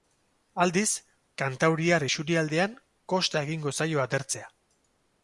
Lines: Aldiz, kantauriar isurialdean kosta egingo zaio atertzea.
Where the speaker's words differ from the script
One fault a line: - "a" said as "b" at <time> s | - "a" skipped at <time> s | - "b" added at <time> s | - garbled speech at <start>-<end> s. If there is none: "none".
none